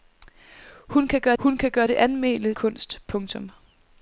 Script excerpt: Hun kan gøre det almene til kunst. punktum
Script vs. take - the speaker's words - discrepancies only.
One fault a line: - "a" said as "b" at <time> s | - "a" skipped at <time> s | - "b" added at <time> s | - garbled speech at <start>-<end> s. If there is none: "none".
- "hun kan gøre" added at 1.4 s
- "til" skipped at 2.5 s